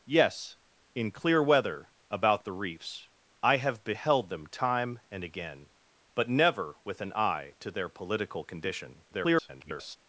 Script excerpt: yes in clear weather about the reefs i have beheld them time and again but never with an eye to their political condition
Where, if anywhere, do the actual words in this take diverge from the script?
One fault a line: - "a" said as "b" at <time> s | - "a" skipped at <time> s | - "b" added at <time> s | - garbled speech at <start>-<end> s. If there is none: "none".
- garbled speech at 9.1-10.0 s